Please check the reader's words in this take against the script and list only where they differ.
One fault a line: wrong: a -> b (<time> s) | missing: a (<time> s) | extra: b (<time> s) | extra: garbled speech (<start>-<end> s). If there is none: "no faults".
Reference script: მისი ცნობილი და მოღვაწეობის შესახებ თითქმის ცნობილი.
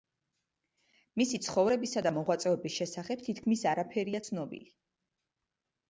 wrong: ცნობილი -> ცხოვრებისა (1.5 s)
extra: არაფერია (3.7 s)